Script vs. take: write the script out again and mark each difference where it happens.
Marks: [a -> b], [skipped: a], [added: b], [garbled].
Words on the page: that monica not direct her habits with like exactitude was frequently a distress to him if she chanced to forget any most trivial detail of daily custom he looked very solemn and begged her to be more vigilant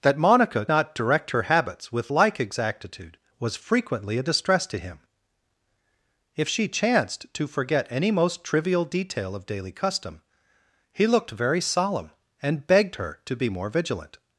that monica not direct her habits with like exactitude was frequently a distress to him if she chanced to forget any most trivial detail of daily custom he looked very solemn and begged her to be more vigilant